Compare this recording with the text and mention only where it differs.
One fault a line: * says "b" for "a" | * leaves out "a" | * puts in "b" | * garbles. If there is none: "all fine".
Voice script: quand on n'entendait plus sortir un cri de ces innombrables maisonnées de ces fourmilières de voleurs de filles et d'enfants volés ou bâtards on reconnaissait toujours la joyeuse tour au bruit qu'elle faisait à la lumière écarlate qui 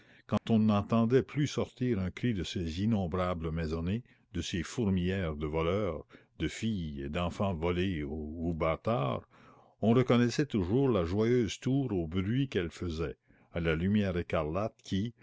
all fine